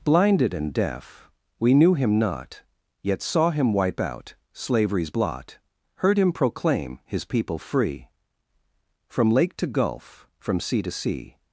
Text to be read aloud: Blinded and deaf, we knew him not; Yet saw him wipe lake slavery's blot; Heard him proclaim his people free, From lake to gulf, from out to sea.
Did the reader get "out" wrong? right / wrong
wrong